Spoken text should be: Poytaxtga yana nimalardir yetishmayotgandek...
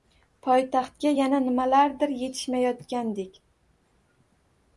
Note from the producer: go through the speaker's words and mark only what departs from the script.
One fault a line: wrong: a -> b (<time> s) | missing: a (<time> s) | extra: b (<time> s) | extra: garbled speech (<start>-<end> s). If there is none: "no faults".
no faults